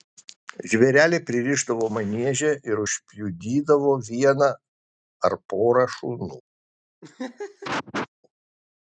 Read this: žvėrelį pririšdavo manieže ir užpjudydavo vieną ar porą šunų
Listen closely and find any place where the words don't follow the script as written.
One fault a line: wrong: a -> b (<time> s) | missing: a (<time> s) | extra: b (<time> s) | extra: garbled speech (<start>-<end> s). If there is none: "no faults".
no faults